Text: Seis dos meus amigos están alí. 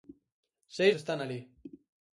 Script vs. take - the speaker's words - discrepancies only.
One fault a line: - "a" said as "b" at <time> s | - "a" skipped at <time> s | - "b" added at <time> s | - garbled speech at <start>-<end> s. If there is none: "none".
- "dos meus amigos" skipped at 0.9 s